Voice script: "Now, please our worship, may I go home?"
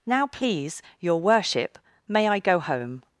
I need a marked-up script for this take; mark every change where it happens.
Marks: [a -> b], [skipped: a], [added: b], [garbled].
"Now, please [our -> your] worship, may I go home?"